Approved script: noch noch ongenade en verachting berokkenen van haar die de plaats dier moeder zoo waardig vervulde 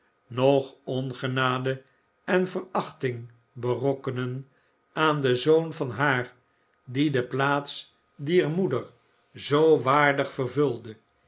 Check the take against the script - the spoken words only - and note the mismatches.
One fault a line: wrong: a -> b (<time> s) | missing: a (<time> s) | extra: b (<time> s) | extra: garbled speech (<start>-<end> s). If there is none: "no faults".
missing: noch (0.8 s)
extra: aan den zoon (4.9 s)